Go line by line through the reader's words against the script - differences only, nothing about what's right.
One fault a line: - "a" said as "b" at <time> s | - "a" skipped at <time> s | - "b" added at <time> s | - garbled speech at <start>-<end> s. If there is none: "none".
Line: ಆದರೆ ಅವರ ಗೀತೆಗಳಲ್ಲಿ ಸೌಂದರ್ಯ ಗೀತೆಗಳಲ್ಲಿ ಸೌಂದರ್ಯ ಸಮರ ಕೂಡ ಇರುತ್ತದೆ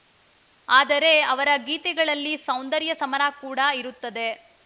- "ಗೀತೆಗಳಲ್ಲಿ ಸೌಂದರ್ಯ" skipped at 2.9 s